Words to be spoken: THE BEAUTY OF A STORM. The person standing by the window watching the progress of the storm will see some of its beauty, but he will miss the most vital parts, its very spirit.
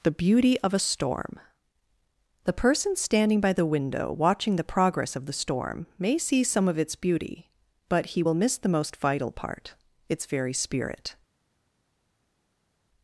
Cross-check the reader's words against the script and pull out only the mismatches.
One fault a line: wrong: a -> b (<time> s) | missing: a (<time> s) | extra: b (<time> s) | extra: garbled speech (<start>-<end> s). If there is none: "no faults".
wrong: will -> may (6.0 s)
wrong: parts -> part (9.3 s)